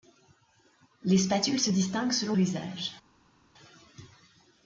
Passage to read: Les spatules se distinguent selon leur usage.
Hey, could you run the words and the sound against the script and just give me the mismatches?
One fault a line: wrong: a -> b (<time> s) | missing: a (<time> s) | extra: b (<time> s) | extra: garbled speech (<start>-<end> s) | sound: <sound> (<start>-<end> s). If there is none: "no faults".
missing: leur (2.4 s)